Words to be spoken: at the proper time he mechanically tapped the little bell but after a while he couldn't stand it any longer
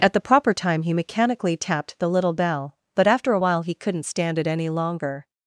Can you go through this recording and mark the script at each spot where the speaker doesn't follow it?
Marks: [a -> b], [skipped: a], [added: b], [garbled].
at the proper time he mechanically tapped the little bell but after a while he couldn't stand it any longer